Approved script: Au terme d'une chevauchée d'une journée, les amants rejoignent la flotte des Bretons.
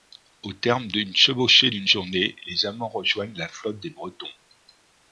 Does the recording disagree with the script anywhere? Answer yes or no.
no